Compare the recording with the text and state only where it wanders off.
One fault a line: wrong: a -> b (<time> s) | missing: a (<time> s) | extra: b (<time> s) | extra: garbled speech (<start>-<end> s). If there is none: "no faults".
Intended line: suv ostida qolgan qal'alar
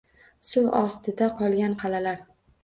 no faults